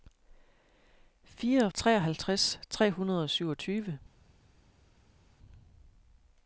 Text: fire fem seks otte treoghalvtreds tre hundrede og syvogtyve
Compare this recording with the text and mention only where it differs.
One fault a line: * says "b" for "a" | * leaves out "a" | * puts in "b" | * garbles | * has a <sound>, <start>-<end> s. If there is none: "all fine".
* leaves out "fem seks otte"